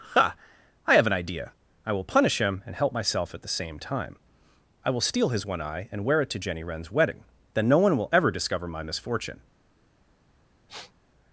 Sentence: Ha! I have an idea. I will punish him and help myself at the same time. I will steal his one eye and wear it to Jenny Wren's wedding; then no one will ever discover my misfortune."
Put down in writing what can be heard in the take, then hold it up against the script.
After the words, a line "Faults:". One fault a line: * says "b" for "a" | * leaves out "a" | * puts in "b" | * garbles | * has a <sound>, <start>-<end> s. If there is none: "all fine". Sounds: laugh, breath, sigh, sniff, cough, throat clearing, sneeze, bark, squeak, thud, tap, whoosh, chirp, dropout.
Ha! I have an idea. I will punish him and help myself at the same time. I will steal his one eye and wear it to Jenny Wren's wedding; then no one will ever discover my misfortune."
Faults:
* has a sniff, 10.7-10.9 s